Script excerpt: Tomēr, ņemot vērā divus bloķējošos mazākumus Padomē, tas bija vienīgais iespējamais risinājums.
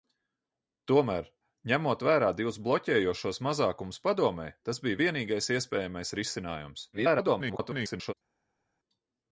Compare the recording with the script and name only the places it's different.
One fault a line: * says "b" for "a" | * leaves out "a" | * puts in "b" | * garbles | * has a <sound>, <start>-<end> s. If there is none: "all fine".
* garbles